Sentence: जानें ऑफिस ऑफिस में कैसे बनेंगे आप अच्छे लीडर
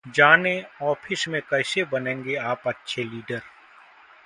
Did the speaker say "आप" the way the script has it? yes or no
yes